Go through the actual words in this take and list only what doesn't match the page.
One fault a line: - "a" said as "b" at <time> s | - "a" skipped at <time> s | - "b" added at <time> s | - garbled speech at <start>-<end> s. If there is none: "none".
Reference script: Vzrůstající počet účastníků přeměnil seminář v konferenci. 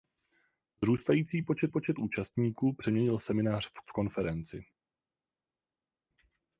- "počet" added at 1.7 s
- "v" added at 3.8 s